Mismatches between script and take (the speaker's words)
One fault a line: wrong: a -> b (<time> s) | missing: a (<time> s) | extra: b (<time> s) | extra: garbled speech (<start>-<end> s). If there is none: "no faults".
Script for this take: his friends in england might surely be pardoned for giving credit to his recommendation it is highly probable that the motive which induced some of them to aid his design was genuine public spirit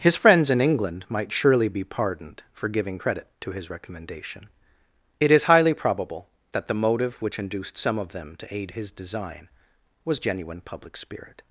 no faults